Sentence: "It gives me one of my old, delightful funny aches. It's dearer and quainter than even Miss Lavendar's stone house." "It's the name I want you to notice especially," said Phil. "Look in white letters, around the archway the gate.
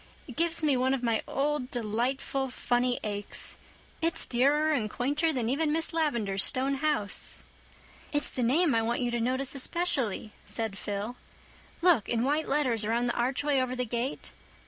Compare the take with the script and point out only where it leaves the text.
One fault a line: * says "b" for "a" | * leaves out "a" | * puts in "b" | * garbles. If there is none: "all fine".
* puts in "over"